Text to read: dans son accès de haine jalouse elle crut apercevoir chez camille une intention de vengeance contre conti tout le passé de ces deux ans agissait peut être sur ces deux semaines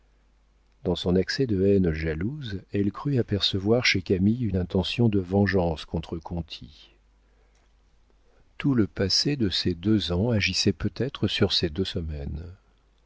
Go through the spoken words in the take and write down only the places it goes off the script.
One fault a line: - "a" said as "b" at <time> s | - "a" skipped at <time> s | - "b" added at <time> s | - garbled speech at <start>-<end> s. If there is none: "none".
none